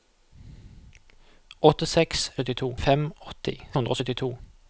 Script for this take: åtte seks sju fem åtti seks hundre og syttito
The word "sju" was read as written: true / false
false